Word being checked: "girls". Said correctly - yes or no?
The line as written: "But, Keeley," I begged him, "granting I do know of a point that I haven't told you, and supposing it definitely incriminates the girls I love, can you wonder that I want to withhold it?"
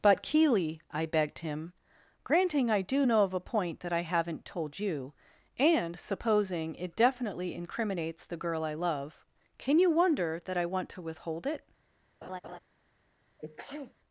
no